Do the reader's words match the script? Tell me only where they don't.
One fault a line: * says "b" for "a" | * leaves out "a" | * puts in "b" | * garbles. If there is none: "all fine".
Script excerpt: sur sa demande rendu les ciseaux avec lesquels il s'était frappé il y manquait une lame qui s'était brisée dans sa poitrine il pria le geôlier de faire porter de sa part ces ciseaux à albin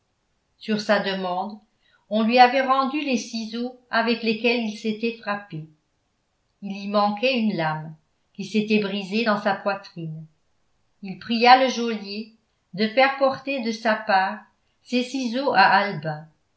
* puts in "on lui avait"